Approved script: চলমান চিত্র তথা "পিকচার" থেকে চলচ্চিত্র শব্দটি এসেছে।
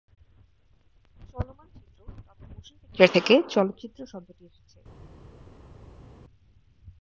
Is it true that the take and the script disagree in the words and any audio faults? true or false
true